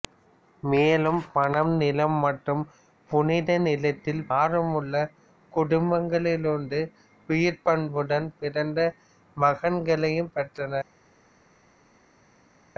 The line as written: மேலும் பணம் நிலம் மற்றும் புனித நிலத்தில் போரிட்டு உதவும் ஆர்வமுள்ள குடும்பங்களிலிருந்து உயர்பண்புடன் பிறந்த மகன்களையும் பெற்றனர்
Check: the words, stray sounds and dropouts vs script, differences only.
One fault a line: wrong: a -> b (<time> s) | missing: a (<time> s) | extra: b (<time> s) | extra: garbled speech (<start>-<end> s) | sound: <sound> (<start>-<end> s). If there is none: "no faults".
missing: போரிட்டு உதவும் (4.2 s)